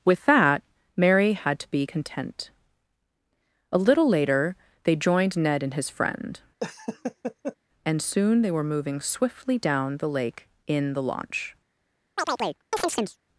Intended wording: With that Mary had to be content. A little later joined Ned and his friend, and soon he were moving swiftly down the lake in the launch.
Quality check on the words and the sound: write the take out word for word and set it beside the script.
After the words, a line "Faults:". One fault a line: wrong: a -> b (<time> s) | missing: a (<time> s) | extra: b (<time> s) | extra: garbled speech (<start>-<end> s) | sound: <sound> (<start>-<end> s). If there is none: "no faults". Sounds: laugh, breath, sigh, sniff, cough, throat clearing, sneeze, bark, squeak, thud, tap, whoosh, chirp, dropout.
With that Mary had to be content. A little later they joined Ned and his friend, and soon they were moving swiftly down the lake in the launch.
Faults:
extra: they (4.8 s)
sound: laugh (6.6-7.6 s)
wrong: he -> they (8.4 s)
sound: chirp (12.2-13.2 s)